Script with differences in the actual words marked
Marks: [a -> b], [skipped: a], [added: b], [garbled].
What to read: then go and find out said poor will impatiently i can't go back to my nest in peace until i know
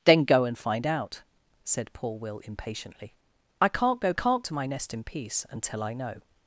then go and find out said poor will impatiently i can't go [back -> can't] to my nest in peace until i know